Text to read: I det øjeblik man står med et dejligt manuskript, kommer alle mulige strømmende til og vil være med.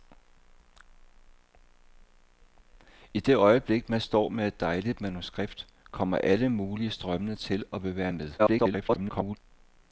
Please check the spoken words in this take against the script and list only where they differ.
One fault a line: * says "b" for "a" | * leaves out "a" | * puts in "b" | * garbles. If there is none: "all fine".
* garbles